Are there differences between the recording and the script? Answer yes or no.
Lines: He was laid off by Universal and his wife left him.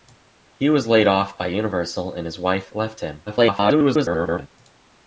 yes